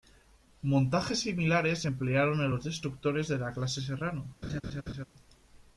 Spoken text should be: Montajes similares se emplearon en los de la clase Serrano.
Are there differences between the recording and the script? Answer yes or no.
yes